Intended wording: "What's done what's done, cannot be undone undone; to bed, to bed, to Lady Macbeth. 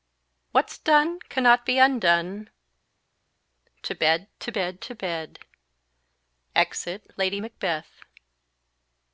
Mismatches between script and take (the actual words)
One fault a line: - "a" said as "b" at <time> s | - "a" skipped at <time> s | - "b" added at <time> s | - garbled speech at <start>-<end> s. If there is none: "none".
- "what's done" skipped at 1.2 s
- "undone" said as "to bed" at 3.8 s
- "to" said as "Exit" at 6.6 s